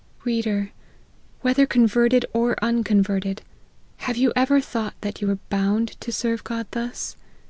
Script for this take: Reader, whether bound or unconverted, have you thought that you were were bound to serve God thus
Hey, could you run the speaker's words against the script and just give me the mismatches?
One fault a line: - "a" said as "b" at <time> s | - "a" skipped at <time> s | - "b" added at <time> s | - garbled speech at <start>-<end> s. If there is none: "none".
- "bound" said as "converted" at 1.7 s
- "ever" added at 4.3 s
- "were" skipped at 5.4 s